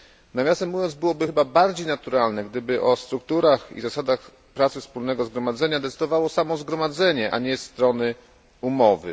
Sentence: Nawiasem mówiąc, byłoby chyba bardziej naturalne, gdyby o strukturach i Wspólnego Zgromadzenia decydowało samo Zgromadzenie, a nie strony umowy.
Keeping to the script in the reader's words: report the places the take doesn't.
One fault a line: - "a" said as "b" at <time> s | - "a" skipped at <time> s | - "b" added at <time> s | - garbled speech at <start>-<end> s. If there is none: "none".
- "zasadach pracy" added at 3.8 s